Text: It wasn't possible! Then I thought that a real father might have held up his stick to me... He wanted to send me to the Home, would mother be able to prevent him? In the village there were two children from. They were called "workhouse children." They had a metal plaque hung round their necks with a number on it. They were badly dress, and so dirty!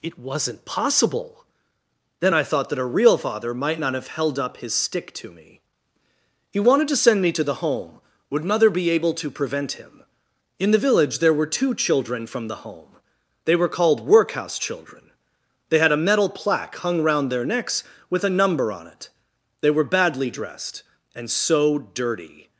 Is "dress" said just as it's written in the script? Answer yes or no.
no